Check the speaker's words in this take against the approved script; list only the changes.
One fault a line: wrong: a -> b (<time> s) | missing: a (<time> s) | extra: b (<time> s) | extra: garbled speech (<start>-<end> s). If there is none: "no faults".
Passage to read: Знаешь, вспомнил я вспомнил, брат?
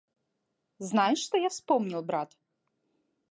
wrong: вспомнил -> что (1.2 s)